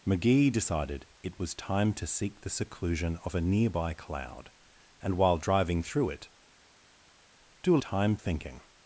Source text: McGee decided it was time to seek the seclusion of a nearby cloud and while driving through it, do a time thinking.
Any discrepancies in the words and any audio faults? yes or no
no